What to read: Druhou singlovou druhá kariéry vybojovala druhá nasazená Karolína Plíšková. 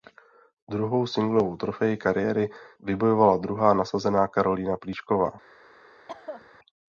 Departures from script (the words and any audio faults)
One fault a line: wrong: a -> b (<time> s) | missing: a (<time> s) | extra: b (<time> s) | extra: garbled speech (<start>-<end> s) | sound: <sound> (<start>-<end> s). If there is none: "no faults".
wrong: druhá -> trofej (1.6 s)
sound: cough (6.1-6.6 s)